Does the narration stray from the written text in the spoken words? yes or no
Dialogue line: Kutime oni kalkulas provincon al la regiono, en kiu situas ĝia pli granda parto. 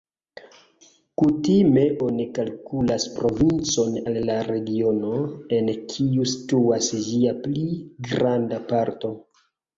no